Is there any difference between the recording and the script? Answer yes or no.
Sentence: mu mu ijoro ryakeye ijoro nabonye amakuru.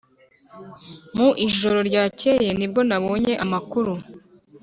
yes